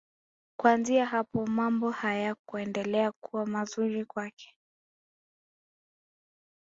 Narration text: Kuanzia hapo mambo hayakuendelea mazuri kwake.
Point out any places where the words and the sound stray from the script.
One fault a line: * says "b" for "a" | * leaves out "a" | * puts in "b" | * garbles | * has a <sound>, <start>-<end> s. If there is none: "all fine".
* puts in "kuwa"